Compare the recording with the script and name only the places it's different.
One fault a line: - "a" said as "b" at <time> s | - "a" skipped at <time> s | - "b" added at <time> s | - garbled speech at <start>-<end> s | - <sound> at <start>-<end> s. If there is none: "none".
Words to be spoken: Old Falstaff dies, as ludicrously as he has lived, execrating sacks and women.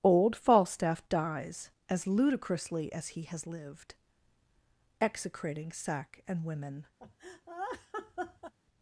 - "sacks" said as "sack" at 5.7 s
- laugh at 7.0-8.5 s